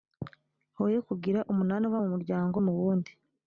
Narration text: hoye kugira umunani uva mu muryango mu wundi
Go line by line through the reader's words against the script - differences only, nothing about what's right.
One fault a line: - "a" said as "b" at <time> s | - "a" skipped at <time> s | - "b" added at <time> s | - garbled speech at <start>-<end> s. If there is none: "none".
none